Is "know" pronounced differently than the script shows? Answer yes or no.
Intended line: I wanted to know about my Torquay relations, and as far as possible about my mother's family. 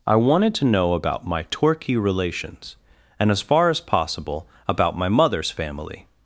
no